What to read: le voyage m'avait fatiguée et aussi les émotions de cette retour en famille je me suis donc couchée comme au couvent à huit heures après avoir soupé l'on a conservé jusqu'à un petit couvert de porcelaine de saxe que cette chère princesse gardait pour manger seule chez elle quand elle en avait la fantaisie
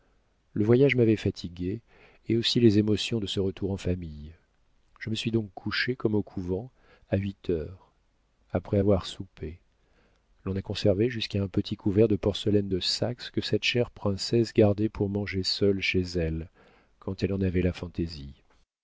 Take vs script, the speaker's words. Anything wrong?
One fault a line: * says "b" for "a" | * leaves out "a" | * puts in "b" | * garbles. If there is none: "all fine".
* says "ce" for "cette"